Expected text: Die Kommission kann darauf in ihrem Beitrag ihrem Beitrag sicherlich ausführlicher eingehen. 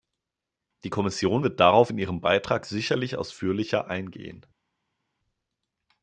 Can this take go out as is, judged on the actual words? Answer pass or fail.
fail